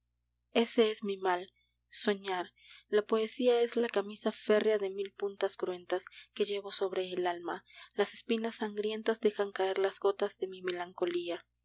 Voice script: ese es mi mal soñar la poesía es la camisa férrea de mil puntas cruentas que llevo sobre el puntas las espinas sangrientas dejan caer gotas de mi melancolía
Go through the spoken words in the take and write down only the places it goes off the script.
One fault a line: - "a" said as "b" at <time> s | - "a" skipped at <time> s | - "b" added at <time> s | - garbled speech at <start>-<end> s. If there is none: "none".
- "puntas" said as "alma" at 7.3 s
- "las" added at 9.8 s